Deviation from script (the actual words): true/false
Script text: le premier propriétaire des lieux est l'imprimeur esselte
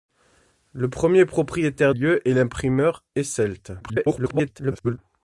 true